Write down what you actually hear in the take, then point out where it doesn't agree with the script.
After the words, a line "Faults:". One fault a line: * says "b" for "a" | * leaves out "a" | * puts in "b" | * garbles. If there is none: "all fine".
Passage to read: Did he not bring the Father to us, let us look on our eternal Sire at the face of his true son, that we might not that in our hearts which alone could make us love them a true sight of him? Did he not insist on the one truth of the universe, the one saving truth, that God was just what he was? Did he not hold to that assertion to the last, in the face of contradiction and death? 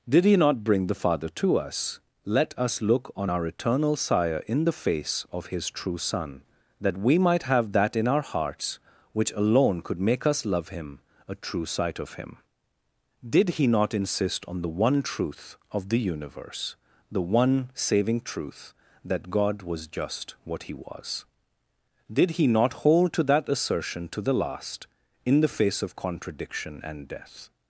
Did he not bring the Father to us, let us look on our eternal Sire in the face of his true son, that we might have that in our hearts which alone could make us love him a true sight of him? Did he not insist on the one truth of the universe, the one saving truth, that God was just what he was? Did he not hold to that assertion to the last, in the face of contradiction and death?
Faults:
* says "in" for "at"
* says "have" for "not"
* says "him" for "them"